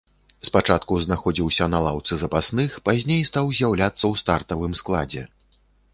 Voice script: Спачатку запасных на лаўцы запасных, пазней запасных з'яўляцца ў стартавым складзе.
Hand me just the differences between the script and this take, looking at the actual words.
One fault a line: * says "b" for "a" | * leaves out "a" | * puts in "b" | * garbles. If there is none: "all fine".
* says "знаходзіўся" for "запасных"
* says "стаў" for "запасных"